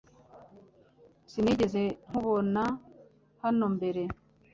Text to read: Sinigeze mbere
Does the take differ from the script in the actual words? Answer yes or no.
yes